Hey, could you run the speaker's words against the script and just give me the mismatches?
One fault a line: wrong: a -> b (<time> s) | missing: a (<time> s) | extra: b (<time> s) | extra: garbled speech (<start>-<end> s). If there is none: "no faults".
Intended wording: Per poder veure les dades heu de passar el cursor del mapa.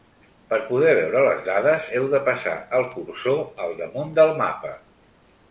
extra: al damunt (3.7 s)